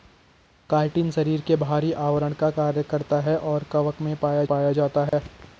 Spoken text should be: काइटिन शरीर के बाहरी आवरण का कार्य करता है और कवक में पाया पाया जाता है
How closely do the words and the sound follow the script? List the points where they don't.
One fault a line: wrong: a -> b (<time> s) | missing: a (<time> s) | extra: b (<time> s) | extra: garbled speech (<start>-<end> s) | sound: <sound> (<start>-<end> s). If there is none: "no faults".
sound: dropout (5.1-5.1 s)